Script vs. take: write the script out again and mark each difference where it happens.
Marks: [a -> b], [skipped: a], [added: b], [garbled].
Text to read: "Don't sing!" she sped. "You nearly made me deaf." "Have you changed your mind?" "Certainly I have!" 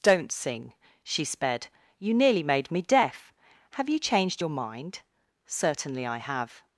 "Don't sing!" she sped. "You nearly made me deaf." "Have you changed your mind?" "Certainly I have!"